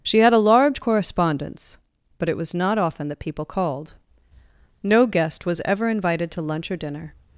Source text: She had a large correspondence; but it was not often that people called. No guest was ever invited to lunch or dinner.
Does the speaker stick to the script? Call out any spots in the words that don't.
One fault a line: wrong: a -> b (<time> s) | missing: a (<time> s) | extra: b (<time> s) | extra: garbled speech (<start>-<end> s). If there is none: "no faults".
no faults